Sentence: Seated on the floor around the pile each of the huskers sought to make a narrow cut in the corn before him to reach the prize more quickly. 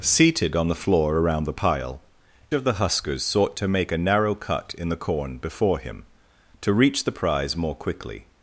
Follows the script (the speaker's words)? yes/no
no